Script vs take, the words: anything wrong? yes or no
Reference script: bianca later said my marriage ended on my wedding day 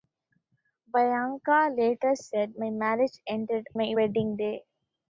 yes